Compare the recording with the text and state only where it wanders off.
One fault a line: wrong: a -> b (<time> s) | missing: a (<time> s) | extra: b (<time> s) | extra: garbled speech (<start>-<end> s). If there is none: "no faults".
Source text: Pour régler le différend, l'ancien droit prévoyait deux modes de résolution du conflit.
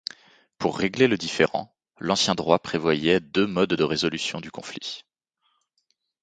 no faults